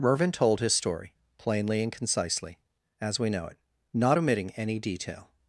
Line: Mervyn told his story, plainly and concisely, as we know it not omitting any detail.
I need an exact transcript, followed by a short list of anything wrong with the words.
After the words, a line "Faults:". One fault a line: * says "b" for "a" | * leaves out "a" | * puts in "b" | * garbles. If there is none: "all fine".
Mervyn told his story, plainly and concisely, as we know it not omitting any detail.
Faults:
all fine